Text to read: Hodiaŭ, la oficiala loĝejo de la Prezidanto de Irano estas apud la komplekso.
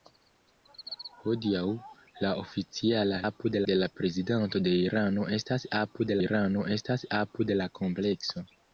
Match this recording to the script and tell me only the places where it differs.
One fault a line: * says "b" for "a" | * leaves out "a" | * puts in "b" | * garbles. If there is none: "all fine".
* says "apud" for "loĝejo"
* puts in "Irano estas apud"